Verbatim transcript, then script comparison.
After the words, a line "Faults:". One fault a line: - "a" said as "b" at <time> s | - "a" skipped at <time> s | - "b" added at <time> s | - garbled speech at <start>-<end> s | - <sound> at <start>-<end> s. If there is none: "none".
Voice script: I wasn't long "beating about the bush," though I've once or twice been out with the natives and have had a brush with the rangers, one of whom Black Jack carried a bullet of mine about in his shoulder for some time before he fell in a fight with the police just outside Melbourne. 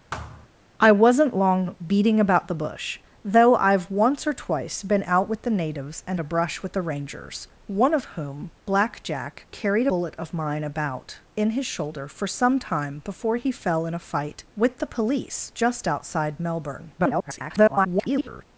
I wasn't long "beating about the bush," though I've once or twice been out with the natives and a brush with the rangers, one of whom Black Jack carried bullet of mine about in his shoulder for some time before he fell in a fight with the police just outside Melbourne. [garbled]
Faults:
- thud at 0.1-0.5 s
- "have had" skipped at 6.2 s
- "a" skipped at 9.9 s
- garbled speech at 17.0-18.4 s